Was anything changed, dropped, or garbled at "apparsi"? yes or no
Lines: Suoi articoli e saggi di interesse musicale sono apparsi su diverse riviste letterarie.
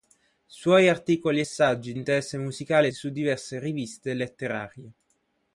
yes